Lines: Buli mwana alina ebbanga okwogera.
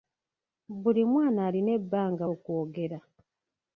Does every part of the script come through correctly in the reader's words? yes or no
yes